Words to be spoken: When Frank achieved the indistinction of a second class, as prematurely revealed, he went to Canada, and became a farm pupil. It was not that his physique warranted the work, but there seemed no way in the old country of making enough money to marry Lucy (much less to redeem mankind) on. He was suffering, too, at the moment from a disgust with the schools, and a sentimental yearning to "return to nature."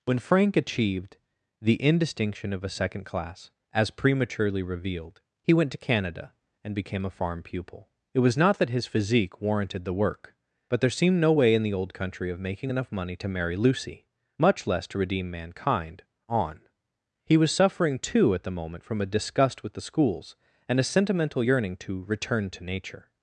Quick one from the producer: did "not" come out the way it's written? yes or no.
yes